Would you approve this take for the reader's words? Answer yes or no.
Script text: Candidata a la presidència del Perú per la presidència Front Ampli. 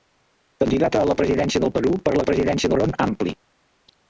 yes